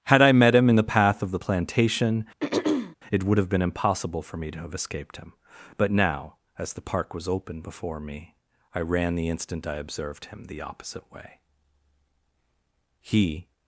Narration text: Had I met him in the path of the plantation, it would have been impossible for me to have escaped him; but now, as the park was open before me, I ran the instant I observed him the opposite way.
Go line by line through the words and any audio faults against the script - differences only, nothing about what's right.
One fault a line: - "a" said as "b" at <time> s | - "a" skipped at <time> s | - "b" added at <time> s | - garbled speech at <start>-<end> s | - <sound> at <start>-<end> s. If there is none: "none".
- throat clearing at 2.4-3.0 s
- "He" added at 13.0 s